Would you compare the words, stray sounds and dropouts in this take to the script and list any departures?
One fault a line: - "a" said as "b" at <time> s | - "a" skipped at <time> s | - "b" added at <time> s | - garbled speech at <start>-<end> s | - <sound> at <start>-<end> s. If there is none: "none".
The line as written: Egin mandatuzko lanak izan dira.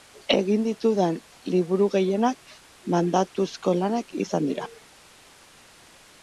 - "ditudan liburu gehienak" added at 0.7 s